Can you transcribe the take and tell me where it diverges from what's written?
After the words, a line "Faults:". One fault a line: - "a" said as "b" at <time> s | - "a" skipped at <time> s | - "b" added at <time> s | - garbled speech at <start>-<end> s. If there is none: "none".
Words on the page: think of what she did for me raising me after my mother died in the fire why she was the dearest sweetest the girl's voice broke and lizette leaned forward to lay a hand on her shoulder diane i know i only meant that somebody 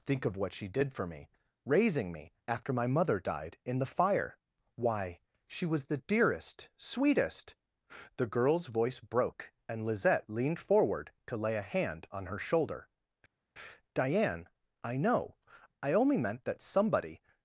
think of what she did for me raising me after my mother died in the fire why she was the dearest sweetest the girl's voice broke and lizette leaned forward to lay a hand on her shoulder diane i know i only meant that somebody
Faults:
none